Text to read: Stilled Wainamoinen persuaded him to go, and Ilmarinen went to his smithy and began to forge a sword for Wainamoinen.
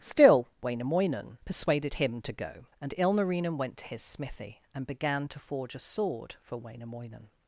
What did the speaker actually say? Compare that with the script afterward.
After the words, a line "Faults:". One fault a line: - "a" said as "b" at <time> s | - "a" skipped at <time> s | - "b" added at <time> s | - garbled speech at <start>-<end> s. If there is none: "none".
Still Wainamoinen persuaded him to go, and Ilmarinen went to his smithy and began to forge a sword for Wainamoinen.
Faults:
- "Stilled" said as "Still" at 0.0 s